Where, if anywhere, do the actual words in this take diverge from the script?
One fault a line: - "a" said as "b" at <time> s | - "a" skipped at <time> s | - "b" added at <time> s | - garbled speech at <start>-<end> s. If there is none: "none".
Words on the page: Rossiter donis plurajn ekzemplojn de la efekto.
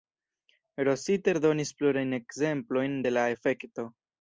none